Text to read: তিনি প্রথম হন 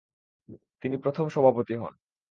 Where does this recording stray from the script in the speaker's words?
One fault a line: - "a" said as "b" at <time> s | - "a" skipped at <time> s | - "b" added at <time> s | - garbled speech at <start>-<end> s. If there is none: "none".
- "সভাপতি" added at 1.3 s